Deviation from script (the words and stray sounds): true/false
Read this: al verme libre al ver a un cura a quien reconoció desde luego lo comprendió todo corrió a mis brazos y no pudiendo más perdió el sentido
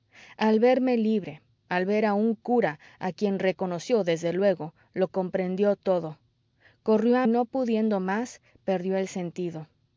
true